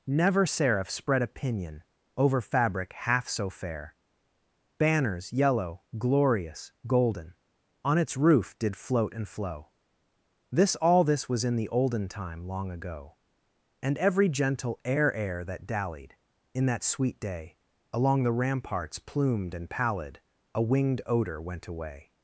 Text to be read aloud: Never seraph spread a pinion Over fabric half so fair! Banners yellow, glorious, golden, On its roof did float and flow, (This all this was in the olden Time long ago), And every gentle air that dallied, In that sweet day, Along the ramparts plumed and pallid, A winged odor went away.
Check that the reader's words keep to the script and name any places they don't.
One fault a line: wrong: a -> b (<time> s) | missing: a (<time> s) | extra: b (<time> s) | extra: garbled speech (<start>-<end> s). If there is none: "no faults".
extra: air (15.1 s)